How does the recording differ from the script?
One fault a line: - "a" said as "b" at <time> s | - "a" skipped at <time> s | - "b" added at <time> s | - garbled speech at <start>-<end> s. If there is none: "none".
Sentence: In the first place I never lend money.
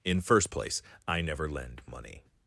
- "the" skipped at 0.2 s